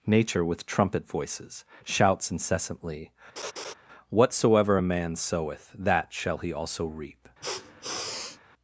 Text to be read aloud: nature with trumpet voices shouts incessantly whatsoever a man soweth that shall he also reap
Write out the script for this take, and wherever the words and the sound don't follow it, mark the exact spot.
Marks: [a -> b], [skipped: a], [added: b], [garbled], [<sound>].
nature with trumpet voices shouts incessantly [laugh] whatsoever a man soweth that shall he also reap [sniff]